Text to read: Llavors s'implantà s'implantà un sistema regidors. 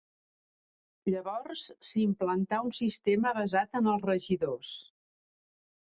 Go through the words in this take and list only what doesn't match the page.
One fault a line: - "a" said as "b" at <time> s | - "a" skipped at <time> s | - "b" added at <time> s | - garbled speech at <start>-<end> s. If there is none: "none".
- "s'implantà" skipped at 2.6 s
- "basat en els" added at 3.4 s